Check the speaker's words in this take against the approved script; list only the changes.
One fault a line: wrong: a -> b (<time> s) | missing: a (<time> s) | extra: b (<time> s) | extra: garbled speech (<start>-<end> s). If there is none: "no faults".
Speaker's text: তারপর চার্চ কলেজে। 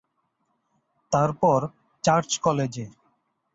no faults